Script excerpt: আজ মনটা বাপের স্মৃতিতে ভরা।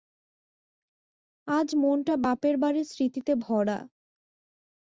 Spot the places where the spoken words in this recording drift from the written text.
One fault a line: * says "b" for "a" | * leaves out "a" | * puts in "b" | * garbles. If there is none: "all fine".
* puts in "বাড়ির"